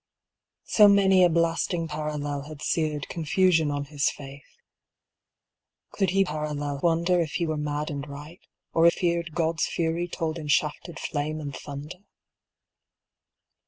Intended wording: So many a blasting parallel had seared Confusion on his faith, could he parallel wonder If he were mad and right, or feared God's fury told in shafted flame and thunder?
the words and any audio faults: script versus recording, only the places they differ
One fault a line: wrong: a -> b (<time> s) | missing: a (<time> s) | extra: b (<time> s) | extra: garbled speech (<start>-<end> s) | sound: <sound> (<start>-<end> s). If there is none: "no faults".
no faults